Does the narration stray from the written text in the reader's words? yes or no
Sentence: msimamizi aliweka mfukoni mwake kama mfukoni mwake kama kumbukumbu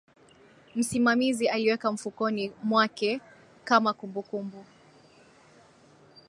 yes